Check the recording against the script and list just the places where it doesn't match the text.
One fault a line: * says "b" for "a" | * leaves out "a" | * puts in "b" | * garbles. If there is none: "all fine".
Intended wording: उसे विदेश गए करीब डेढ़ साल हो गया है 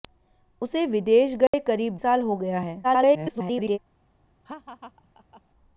* leaves out "डेढ़"
* garbles